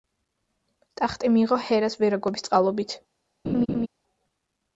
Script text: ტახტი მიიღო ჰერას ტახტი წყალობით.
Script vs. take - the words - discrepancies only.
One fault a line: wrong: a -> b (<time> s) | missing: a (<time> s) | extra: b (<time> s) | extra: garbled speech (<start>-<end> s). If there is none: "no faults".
wrong: ტახტი -> ვერაგობის (2.0 s)